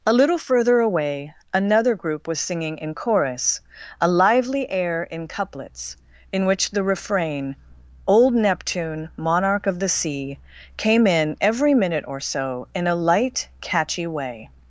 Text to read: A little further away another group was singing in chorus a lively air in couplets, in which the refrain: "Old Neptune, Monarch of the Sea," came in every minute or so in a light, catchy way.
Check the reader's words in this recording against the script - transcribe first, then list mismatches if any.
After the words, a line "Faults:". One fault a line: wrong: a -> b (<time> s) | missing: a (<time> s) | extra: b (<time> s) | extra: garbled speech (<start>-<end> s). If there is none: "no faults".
A little further away another group was singing in chorus a lively air in couplets, in which the refrain: "Old Neptune, Monarch of the Sea," came in every minute or so in a light, catchy way.
Faults:
no faults